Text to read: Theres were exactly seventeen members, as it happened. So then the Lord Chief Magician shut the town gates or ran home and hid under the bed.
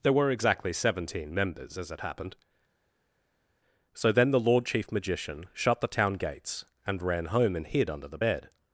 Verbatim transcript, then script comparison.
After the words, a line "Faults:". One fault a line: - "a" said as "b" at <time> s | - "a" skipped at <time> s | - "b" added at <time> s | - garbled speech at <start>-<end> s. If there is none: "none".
There were exactly seventeen members, as it happened. So then the Lord Chief Magician shut the town gates and ran home and hid under the bed.
Faults:
- "Theres" said as "There" at 0.0 s
- "or" said as "and" at 6.8 s